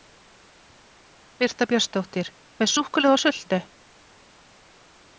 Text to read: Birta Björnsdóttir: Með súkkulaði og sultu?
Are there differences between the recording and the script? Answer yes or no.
no